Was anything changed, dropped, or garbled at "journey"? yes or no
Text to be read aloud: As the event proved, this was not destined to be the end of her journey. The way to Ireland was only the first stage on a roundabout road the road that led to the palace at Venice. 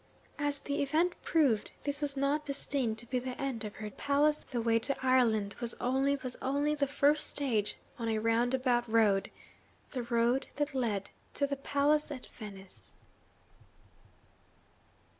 yes